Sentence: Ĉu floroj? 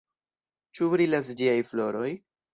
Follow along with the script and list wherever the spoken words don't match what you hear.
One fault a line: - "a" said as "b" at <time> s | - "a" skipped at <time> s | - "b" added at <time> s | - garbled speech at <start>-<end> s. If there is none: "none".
- "brilas ĝiaj" added at 0.9 s